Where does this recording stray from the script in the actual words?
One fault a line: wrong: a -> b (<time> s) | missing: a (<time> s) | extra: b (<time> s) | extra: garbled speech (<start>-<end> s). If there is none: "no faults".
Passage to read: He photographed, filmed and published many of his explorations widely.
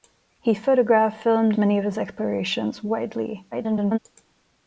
missing: and published (1.6 s)
extra: garbled speech (3.5-4.0 s)